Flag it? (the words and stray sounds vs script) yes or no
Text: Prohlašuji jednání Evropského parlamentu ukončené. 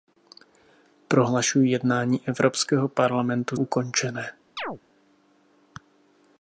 yes